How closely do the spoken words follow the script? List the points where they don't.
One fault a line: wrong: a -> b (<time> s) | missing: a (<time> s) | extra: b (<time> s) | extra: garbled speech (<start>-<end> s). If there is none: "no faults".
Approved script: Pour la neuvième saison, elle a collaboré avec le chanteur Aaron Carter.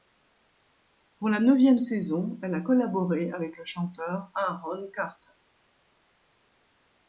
no faults